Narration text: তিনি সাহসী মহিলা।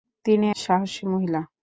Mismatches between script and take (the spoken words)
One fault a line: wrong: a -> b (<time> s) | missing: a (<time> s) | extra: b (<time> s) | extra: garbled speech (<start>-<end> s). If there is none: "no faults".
no faults